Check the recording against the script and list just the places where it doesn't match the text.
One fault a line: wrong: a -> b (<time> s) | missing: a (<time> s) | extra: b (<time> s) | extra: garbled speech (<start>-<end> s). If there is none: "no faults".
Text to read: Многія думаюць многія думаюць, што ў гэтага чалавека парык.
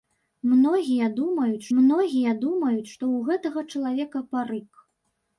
no faults